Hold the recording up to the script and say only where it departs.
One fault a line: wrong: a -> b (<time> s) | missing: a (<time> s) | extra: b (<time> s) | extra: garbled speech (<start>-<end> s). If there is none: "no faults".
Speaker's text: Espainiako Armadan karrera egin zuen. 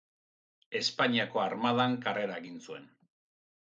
no faults